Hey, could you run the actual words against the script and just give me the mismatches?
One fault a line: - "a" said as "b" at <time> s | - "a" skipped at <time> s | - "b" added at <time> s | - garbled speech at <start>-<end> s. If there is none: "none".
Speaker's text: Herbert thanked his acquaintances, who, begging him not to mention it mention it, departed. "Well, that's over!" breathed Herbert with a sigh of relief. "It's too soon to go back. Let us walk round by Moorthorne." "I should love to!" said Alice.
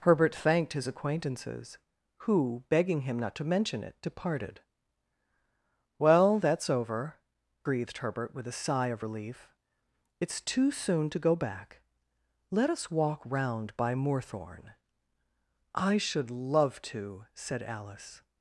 - "mention it" skipped at 4.0 s